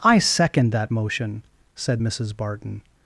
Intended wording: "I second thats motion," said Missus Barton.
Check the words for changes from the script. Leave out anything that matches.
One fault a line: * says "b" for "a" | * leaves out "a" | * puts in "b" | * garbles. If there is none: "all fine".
* says "that" for "thats"